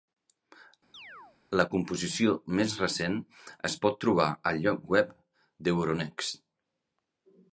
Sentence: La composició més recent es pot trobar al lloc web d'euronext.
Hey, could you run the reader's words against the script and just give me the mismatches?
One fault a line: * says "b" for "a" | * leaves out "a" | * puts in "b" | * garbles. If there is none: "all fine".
all fine